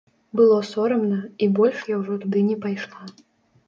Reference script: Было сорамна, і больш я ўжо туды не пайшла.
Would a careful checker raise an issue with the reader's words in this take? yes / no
no